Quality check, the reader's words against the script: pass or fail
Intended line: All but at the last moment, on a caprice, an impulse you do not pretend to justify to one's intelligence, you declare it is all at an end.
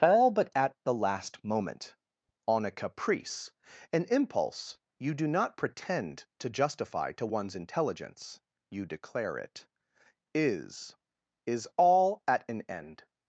fail